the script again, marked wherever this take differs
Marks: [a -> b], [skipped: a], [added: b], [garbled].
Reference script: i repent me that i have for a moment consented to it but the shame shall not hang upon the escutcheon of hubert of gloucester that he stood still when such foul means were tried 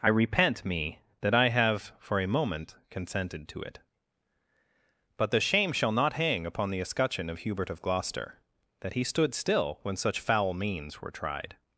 i repent me that i have for a moment consented to it but the shame shall not hang upon the escutcheon of hubert of gloucester that he stood still when such foul means were tried